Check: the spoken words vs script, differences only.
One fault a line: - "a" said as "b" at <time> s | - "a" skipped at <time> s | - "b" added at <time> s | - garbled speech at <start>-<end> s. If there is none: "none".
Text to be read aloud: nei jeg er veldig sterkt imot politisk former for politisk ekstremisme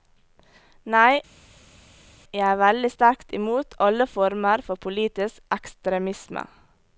- "politisk" said as "alle" at 3.9 s